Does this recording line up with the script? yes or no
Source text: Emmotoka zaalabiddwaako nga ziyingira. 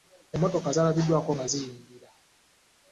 yes